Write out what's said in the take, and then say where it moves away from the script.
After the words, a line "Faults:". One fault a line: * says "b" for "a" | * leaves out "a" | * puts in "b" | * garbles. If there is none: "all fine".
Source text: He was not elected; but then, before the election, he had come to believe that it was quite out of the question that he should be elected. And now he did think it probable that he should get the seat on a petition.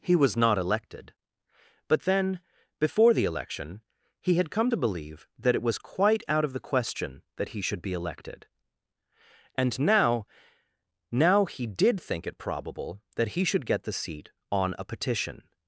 He was not elected; but then, before the election, he had come to believe that it was quite out of the question that he should be elected. And now now he did think it probable that he should get the seat on a petition.
Faults:
* puts in "now"